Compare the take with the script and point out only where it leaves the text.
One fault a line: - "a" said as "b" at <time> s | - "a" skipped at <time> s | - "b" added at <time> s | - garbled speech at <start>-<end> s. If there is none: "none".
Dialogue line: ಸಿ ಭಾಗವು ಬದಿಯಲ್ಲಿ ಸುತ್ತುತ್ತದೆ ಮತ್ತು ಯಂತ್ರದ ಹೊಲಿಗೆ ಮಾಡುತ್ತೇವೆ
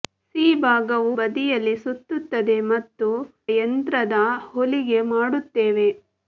none